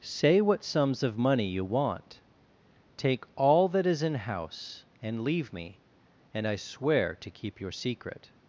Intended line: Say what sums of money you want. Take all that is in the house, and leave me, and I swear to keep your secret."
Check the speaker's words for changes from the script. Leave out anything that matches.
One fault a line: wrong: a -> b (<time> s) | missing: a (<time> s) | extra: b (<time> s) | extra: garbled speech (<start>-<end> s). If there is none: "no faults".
missing: the (4.2 s)